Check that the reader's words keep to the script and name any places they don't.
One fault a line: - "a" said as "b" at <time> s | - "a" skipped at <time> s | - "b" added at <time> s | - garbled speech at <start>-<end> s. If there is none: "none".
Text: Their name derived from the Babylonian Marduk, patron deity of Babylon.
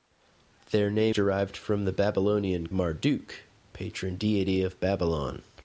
none